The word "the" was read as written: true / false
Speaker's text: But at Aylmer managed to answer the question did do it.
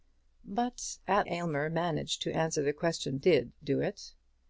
true